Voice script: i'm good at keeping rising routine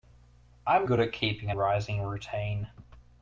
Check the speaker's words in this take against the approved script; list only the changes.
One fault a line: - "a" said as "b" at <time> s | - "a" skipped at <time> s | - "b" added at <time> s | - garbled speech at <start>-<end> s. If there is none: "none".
none